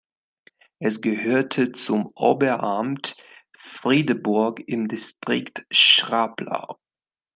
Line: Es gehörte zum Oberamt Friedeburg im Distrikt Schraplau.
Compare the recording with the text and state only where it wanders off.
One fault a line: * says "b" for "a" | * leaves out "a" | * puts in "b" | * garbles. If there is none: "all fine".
all fine